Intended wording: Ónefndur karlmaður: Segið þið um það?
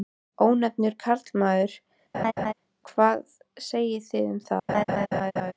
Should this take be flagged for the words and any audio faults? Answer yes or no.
yes